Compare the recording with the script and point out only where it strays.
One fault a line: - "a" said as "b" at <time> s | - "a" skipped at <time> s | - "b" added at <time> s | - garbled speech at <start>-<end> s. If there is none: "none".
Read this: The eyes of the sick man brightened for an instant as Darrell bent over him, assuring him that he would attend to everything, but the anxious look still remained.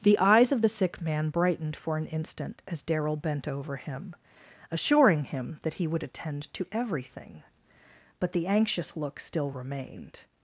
none